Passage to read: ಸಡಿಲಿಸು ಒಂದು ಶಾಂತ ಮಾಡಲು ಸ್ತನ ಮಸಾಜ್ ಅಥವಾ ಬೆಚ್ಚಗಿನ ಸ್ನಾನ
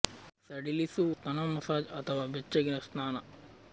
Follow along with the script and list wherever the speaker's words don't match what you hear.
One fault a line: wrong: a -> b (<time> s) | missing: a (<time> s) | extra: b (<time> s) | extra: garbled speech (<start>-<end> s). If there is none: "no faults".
missing: ಒಂದು ಶಾಂತ ಮಾಡಲು (1.0 s)